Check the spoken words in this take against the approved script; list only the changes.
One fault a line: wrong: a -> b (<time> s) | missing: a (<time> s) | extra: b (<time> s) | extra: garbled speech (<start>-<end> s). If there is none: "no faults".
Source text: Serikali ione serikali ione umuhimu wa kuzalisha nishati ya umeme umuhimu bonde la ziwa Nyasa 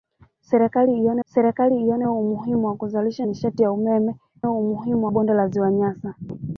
no faults